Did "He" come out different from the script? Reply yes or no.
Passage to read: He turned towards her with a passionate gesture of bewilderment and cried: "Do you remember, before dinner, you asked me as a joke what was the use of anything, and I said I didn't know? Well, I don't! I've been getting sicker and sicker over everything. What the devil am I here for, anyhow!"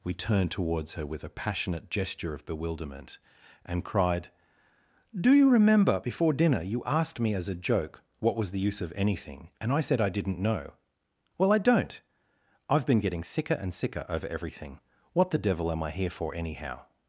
yes